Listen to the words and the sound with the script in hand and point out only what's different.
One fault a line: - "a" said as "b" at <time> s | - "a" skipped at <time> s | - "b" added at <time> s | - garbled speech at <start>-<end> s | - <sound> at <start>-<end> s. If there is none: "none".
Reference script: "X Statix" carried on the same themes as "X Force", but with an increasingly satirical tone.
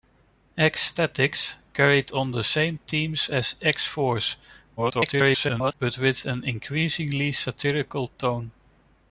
- garbled speech at 4.8-5.7 s